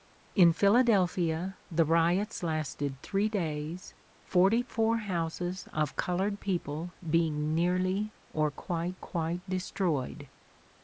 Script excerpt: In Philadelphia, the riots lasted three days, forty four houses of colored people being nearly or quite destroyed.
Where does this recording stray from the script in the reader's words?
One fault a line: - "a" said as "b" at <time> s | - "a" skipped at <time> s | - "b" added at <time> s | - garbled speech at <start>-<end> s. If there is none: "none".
- "quite" added at 8.9 s